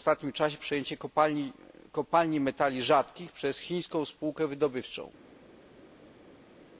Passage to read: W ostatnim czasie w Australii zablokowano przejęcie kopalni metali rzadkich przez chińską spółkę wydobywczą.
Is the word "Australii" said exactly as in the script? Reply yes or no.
no